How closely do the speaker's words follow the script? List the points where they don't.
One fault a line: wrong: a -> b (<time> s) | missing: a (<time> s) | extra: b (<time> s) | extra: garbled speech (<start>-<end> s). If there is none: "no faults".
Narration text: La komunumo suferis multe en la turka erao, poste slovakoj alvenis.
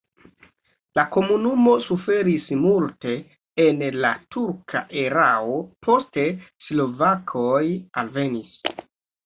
no faults